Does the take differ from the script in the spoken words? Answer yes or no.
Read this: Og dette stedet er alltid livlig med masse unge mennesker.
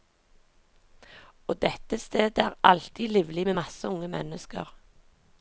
no